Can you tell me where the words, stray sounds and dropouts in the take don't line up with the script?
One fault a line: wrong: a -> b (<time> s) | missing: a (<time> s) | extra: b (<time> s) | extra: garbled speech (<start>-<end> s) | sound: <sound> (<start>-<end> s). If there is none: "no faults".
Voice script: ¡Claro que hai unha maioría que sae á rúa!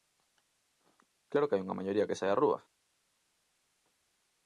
no faults